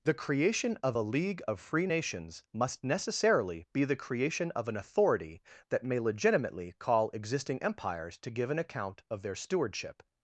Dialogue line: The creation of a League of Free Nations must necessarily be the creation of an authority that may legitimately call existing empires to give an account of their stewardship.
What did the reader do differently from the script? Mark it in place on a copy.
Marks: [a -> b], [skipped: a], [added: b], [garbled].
The creation of a League of Free Nations must necessarily be the creation of an authority that may legitimately call existing empires to give an account of their stewardship.